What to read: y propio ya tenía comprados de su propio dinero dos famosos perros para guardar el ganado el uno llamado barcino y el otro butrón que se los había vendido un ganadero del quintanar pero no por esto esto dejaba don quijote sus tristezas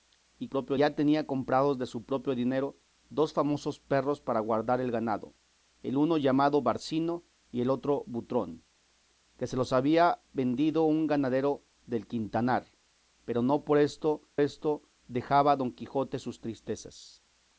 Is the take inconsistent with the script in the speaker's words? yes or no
no